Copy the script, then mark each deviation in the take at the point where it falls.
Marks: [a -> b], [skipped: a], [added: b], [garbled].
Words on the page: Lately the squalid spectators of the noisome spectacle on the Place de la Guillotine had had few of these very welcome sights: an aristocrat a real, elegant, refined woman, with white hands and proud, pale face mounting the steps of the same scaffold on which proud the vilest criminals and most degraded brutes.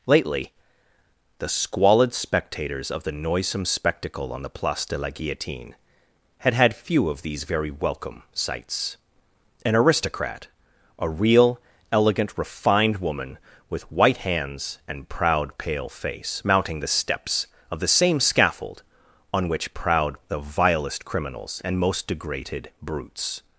Lately the squalid spectators of the noisome spectacle on the Place de la Guillotine had had few of these very welcome sights: an aristocrat a real, elegant, refined woman, with white hands and proud, pale face mounting the steps of the same scaffold on which proud the vilest criminals and most degraded brutes.